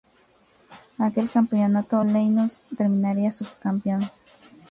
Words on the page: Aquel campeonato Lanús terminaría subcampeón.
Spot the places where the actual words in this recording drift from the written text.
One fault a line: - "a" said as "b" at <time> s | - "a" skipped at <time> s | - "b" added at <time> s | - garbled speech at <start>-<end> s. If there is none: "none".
none